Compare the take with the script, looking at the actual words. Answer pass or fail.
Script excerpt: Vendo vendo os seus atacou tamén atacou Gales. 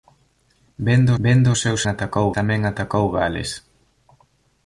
pass